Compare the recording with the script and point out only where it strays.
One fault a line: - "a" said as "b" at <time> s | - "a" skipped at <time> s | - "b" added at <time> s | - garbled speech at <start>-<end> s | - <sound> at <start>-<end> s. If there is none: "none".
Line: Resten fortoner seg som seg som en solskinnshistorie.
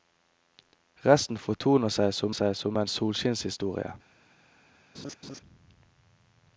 - laugh at 4.9-5.4 s